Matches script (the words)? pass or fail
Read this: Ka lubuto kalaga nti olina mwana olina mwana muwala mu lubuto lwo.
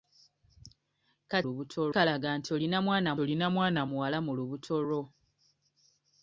pass